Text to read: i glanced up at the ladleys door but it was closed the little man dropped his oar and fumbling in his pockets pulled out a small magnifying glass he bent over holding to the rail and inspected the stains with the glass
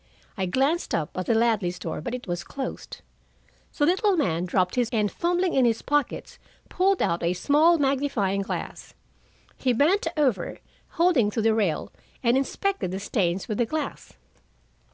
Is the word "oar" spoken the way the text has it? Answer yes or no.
no